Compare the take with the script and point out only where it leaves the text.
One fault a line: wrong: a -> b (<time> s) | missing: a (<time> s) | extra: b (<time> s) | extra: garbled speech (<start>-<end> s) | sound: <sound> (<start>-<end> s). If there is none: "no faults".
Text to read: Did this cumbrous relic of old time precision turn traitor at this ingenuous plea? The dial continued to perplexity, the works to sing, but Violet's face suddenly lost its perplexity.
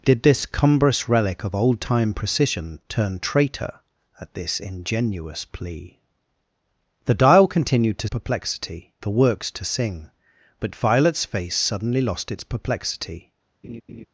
sound: laugh (13.6-14.1 s)